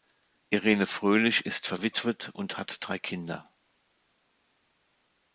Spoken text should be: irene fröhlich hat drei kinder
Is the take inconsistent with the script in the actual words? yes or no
yes